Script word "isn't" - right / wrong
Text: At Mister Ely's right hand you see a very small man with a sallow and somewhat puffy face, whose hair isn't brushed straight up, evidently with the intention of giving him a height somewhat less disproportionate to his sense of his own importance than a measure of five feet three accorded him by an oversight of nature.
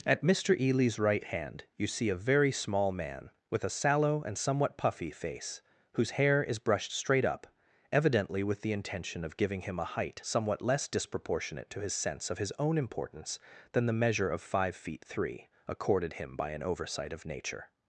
wrong